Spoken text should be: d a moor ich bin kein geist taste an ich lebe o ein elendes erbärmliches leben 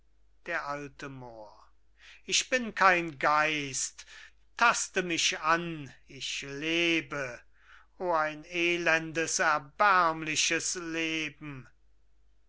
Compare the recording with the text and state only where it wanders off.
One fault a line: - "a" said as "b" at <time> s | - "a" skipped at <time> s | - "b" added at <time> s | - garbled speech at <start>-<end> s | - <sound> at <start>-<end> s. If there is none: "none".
- "mich" added at 5.0 s